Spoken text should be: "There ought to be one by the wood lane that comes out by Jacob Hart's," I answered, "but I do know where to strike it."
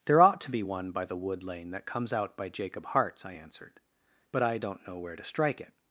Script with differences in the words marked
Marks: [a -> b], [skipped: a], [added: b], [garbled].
"There ought to be one by the wood lane that comes out by Jacob Hart's," I answered, "but I [do -> don't] know where to strike it."